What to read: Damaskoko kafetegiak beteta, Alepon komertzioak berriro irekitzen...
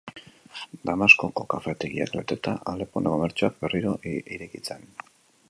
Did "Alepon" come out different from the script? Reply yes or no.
no